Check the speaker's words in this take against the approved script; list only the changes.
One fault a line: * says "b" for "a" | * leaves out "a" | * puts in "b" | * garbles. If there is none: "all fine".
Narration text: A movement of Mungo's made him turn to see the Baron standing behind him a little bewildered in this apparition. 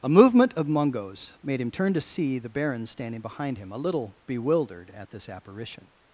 * says "at" for "in"